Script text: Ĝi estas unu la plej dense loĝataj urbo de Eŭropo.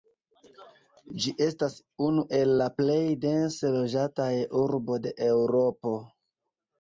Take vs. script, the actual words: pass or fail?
fail